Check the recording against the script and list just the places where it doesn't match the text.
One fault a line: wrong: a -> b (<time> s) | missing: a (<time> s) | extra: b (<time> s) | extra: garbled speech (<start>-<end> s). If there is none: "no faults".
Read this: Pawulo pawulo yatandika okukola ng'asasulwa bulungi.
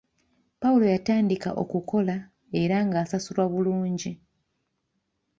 missing: pawulo (0.8 s)
extra: era (2.6 s)